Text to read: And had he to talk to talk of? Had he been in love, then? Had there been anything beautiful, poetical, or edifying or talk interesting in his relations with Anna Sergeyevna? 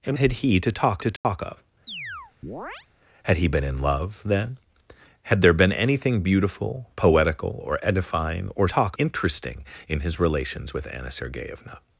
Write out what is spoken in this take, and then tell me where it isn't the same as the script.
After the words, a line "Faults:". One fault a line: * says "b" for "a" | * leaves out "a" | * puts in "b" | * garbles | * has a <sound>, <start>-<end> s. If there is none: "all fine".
And had he to talk to talk of? Had he been in love, then? Had there been anything beautiful, poetical, or edifying or talk interesting in his relations with Anna Sergeyevna?
Faults:
* has a dropout, 1.2-1.2 s
* has a chirp, 1.9-2.9 s